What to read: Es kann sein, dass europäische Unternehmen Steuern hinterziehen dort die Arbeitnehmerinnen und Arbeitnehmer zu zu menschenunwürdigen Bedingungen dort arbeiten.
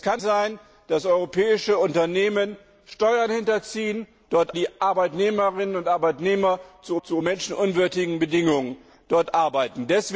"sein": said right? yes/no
yes